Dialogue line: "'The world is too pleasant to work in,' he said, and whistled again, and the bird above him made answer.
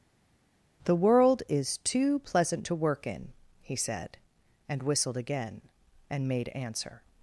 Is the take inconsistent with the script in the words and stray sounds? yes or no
yes